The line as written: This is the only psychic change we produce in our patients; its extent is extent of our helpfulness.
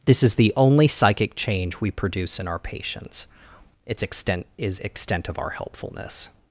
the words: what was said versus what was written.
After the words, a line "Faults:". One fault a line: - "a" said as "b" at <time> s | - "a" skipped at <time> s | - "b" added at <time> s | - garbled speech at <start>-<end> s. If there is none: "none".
This is the only psychic change we produce in our patients; its extent is extent of our helpfulness.
Faults:
none